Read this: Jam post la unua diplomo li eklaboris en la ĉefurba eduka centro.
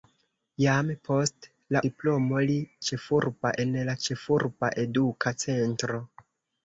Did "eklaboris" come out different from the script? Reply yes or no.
yes